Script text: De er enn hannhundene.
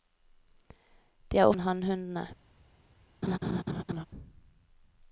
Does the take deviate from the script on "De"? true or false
false